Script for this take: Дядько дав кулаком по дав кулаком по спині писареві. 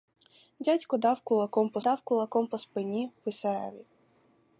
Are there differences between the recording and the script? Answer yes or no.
no